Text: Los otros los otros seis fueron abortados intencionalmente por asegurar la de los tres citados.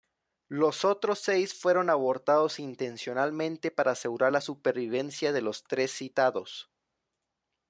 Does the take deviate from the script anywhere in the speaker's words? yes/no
yes